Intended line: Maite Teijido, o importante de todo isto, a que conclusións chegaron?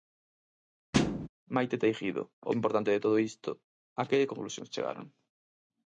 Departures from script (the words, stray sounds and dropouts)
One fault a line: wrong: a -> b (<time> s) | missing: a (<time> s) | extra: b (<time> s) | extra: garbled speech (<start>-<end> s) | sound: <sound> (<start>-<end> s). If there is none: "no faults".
sound: thud (0.9-1.3 s)